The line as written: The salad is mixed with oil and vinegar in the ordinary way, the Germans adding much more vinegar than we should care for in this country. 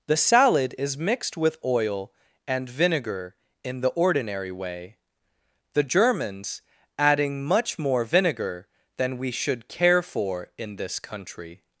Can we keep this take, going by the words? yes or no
yes